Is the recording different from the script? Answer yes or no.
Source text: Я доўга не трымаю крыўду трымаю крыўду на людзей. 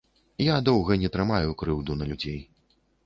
yes